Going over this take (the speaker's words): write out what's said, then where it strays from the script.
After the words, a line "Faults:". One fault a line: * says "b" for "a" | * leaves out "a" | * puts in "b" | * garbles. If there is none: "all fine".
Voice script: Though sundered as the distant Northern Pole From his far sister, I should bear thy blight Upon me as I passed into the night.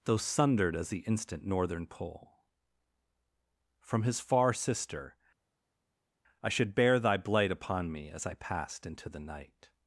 Though sundered as the instant Northern Pole From his far sister, I should bear thy blight Upon me as I passed into the night.
Faults:
* says "instant" for "distant"